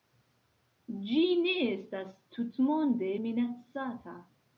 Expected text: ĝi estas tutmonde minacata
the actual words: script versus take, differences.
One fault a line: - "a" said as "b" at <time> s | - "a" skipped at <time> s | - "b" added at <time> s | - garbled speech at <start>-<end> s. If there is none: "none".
- "ne" added at 1.4 s